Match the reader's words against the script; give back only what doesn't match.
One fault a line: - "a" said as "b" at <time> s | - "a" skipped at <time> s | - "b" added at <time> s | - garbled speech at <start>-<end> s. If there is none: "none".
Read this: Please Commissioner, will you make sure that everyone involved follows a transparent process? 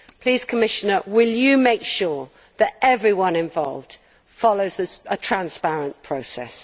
none